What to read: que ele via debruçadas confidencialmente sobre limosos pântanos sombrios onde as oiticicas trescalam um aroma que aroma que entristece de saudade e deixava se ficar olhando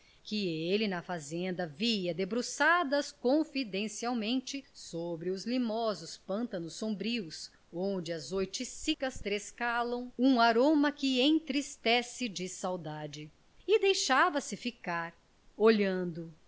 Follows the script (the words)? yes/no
no